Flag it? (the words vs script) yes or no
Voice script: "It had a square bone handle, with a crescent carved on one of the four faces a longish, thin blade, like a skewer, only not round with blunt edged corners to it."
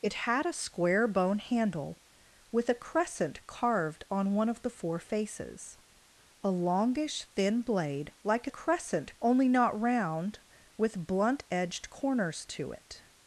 yes